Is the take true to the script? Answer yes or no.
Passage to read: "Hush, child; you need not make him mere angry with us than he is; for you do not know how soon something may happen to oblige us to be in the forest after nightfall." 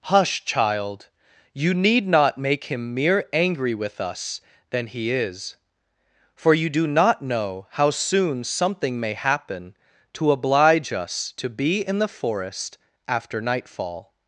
yes